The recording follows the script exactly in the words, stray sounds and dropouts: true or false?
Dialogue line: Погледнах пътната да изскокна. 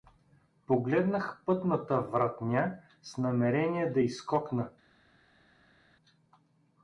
false